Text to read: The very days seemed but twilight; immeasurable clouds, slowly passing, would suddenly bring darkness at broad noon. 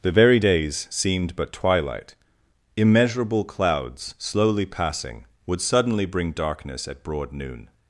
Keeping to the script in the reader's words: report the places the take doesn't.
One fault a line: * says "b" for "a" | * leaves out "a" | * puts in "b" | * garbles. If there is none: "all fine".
all fine